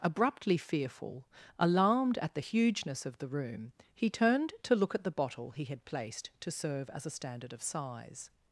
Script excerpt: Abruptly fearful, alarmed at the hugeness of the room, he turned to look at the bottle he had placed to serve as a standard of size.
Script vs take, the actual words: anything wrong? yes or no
no